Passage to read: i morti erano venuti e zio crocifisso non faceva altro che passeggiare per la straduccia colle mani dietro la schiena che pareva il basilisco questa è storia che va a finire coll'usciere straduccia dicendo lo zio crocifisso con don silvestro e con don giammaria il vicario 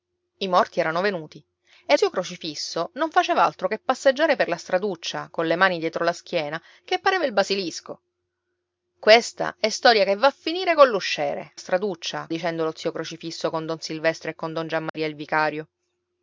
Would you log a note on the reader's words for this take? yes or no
no